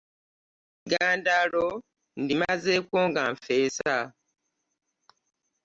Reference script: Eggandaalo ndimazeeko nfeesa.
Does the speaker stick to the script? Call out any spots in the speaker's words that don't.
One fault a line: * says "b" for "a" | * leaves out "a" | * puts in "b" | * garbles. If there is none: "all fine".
* puts in "nga"